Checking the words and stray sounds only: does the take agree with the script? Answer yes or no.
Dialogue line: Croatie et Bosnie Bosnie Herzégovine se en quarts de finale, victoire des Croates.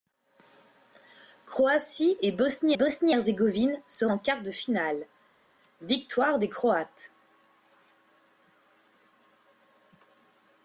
yes